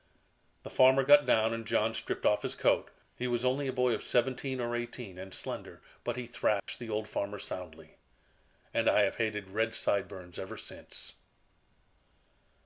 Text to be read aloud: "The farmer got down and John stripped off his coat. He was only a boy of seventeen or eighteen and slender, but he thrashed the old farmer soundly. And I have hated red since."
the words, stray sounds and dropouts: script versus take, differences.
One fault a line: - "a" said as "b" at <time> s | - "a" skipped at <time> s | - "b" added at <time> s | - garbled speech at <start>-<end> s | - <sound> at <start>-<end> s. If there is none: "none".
- dropout at 6.6-6.7 s
- "sideburns ever" added at 9.7 s